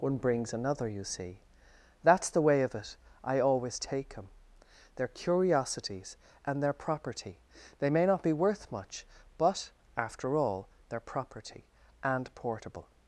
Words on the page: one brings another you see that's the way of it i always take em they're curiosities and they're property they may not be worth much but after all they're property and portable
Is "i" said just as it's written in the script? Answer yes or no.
yes